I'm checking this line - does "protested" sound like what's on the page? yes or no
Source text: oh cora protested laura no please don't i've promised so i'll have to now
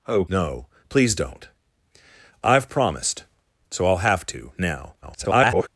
no